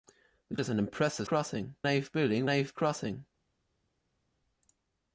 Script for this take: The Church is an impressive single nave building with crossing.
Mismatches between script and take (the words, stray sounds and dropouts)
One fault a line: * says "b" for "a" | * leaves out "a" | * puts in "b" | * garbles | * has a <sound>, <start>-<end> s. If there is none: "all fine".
* leaves out "Church"
* says "crossing" for "single"
* says "nave" for "with"